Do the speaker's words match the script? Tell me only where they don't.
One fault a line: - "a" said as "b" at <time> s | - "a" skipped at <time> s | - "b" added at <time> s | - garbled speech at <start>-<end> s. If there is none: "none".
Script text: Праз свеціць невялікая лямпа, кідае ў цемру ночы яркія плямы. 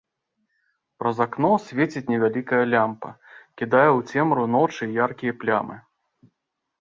- "акно" added at 1.2 s